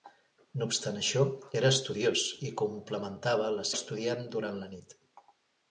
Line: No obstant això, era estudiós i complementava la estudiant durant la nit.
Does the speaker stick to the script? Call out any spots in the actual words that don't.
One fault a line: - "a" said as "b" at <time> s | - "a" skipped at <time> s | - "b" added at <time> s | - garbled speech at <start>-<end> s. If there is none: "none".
none